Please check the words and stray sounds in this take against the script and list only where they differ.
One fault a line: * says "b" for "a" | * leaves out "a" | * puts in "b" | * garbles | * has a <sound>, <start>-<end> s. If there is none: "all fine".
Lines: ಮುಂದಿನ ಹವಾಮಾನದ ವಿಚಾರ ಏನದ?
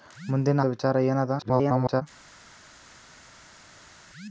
* leaves out "ಹವಾಮಾನದ"
* garbles